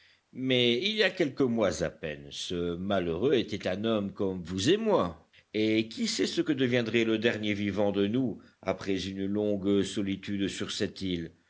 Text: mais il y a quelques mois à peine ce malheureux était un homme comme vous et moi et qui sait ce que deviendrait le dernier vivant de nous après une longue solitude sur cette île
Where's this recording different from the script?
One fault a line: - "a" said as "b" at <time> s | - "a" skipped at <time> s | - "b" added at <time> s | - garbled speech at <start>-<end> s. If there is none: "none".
none